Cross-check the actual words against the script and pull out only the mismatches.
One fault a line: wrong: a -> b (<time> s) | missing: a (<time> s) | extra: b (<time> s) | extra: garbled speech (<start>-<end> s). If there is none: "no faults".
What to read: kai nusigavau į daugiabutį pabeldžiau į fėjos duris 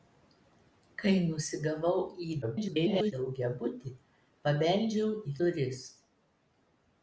extra: garbled speech (2.4-3.1 s)
missing: fėjos (5.3 s)